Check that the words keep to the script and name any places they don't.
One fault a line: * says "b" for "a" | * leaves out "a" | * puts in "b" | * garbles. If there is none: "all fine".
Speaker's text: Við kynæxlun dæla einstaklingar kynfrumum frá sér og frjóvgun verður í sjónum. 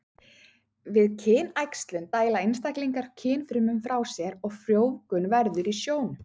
all fine